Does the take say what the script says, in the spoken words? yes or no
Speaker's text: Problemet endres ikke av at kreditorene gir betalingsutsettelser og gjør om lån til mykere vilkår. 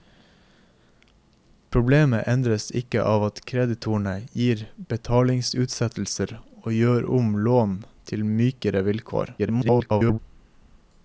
no